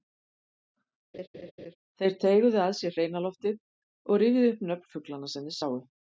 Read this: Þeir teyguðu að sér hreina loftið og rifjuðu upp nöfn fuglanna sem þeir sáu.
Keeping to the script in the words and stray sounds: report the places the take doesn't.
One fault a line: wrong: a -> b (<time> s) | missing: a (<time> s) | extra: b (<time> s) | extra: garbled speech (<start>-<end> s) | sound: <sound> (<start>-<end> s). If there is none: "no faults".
sound: laugh (1.1-1.8 s)